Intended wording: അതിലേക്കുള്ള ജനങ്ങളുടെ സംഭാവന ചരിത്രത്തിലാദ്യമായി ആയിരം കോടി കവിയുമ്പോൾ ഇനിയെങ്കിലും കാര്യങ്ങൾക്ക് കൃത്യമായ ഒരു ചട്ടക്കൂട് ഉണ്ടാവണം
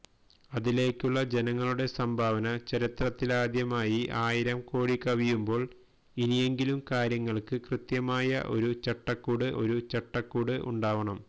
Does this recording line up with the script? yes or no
no